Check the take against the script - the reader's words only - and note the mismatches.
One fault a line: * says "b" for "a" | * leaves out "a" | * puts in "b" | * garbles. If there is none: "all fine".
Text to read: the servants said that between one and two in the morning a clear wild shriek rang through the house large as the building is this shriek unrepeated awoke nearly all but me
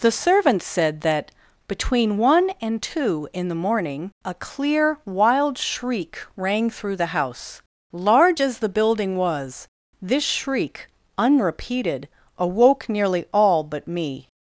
* says "was" for "is"